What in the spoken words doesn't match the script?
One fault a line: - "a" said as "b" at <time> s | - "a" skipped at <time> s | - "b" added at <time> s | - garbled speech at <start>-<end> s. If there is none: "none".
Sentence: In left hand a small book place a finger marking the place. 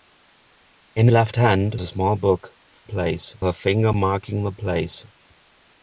none